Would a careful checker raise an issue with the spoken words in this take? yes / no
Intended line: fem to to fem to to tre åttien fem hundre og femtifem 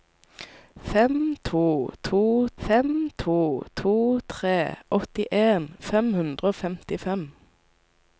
no